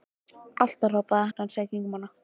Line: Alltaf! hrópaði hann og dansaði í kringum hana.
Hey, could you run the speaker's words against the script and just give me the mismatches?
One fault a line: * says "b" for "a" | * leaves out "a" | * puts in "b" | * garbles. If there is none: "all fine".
* leaves out "hann"